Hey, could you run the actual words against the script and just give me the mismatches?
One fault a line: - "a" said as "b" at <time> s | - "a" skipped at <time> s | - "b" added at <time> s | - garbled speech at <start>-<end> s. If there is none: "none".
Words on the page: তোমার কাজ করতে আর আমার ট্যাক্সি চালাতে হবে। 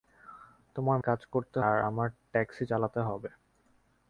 none